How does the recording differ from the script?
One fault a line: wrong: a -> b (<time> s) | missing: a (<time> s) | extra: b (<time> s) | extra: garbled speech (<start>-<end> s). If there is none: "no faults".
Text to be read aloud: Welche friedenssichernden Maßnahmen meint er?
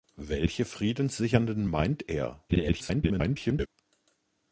missing: Maßnahmen (1.7 s)
extra: garbled speech (2.5-3.7 s)